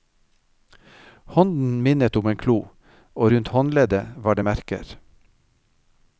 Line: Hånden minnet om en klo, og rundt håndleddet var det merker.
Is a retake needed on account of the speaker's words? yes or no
no